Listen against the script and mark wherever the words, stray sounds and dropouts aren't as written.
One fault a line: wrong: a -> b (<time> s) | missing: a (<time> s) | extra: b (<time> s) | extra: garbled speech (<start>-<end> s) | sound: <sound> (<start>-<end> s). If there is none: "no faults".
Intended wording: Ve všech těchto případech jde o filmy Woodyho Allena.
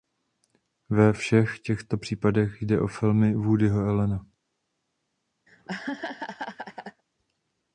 sound: laugh (5.5-7.0 s)